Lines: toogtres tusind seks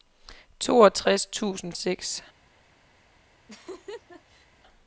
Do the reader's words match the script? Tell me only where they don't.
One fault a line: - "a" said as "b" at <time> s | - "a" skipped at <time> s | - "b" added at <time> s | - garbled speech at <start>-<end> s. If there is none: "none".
none